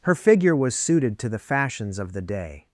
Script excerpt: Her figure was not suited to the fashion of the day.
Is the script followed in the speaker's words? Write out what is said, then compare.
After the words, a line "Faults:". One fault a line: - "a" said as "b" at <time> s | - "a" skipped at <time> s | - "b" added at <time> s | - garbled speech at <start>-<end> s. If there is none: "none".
Her figure was suited to the fashions of the day.
Faults:
- "not" skipped at 0.7 s
- "fashion" said as "fashions" at 1.4 s